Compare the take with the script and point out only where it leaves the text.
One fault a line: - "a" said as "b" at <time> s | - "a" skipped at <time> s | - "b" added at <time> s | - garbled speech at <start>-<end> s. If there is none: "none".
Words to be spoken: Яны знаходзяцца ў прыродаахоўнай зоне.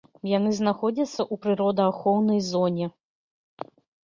none